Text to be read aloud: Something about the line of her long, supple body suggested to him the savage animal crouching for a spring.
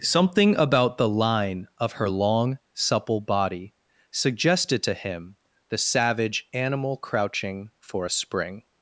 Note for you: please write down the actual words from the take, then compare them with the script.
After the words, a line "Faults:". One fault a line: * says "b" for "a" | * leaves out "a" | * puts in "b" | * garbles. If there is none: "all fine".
Something about the line of her long, supple body suggested to him the savage animal crouching for a spring.
Faults:
all fine